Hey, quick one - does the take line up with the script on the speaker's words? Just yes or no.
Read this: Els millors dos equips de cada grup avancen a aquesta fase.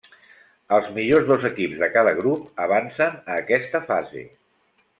yes